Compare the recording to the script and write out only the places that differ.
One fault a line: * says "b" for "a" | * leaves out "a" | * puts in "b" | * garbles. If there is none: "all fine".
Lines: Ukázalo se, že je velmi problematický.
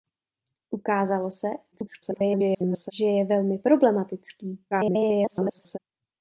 * garbles
* garbles